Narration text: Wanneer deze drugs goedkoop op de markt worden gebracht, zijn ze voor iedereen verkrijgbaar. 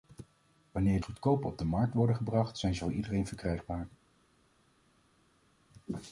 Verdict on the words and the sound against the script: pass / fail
fail